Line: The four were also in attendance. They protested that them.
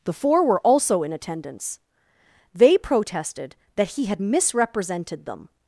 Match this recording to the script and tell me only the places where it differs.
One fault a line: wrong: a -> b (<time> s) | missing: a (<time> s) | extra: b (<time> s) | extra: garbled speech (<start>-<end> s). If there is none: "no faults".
extra: he had misrepresented (3.9 s)